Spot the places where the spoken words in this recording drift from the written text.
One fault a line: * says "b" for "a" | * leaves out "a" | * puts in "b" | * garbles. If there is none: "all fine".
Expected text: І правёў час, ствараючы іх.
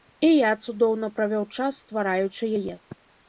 * puts in "я цудоўна"
* says "яе" for "іх"